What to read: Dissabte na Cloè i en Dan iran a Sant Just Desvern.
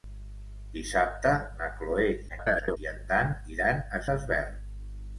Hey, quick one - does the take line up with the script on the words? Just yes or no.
no